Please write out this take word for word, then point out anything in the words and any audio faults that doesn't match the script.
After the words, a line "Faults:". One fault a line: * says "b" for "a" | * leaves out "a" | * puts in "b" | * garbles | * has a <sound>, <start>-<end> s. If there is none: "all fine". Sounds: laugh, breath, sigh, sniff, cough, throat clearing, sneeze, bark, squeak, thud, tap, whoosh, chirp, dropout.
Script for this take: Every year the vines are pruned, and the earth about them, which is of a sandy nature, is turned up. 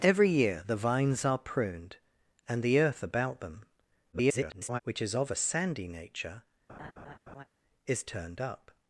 Every year the vines are pruned, and the earth about them, [garbled] which is of a sandy nature, is turned up.
Faults:
* garbles
* has a laugh, 6.7-7.5 s